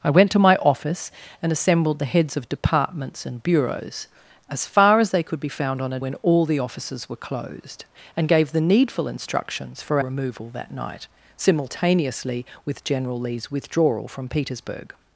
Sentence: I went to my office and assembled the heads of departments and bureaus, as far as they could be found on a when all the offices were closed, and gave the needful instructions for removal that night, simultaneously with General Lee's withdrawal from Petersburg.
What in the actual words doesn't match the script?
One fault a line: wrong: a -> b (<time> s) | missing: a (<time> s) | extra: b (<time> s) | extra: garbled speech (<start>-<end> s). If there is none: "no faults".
no faults